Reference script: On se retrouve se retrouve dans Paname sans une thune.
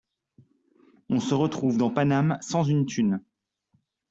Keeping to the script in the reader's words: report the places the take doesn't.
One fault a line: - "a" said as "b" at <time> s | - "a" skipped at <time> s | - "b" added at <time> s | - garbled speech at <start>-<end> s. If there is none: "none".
- "se retrouve" skipped at 1.8 s